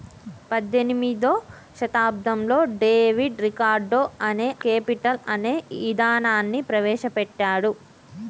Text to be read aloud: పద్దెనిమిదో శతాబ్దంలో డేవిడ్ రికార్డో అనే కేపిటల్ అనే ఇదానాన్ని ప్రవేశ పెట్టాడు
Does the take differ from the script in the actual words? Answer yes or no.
no